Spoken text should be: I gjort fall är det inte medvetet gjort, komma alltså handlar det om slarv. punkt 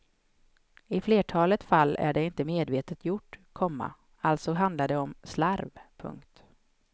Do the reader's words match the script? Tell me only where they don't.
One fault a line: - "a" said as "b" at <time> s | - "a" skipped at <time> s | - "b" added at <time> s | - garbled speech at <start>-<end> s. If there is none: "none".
- "gjort" said as "flertalet" at 1.0 s